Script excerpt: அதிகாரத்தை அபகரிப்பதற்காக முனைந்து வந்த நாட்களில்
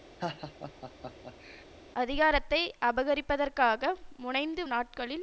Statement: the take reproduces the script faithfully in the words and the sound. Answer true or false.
false